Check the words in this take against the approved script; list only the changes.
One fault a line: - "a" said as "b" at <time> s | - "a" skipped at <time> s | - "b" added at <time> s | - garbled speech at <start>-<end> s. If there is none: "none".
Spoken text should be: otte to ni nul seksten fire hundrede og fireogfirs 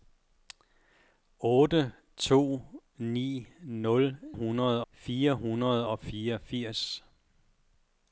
- "seksten" said as "hundrede" at 4.3 s